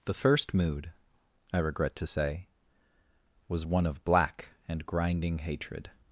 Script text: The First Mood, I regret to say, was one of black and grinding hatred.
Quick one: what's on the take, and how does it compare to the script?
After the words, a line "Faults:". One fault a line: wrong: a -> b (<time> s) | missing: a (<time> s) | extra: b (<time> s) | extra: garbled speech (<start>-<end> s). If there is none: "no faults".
The First Mood, I regret to say, was one of black and grinding hatred.
Faults:
no faults